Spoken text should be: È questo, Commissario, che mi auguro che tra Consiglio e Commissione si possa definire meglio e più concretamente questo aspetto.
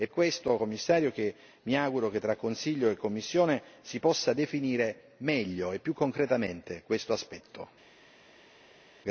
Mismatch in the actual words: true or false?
false